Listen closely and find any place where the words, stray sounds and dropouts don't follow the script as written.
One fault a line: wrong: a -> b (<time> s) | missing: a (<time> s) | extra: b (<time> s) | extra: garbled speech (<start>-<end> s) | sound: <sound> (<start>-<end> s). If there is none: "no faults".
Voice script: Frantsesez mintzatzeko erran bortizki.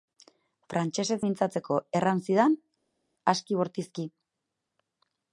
extra: zidan aski (2.3 s)